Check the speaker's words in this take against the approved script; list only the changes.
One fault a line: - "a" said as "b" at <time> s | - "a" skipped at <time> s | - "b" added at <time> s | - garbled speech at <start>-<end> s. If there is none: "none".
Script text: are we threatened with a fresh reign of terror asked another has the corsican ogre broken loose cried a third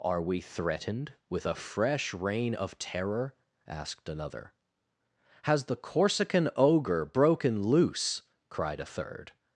none